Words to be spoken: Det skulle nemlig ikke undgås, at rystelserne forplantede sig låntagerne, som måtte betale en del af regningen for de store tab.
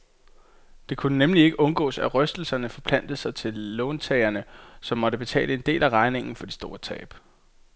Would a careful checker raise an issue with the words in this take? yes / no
yes